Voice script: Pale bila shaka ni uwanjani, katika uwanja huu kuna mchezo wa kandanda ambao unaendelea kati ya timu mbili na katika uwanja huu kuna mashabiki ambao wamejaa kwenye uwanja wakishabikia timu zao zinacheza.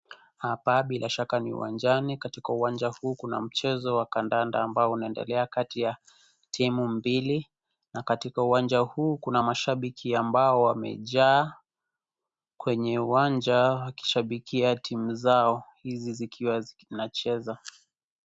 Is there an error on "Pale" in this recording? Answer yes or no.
yes